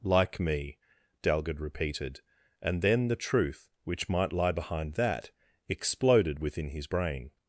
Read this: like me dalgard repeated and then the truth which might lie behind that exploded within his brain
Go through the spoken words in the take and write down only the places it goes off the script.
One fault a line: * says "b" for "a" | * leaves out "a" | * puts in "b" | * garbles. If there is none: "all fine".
all fine